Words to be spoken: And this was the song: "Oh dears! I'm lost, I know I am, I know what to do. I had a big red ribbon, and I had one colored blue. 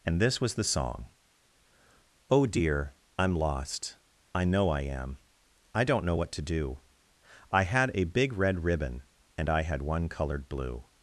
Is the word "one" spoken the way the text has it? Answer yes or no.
yes